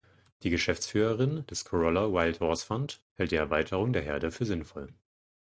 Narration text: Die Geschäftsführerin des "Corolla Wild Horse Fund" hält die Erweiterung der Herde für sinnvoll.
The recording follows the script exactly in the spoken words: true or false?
true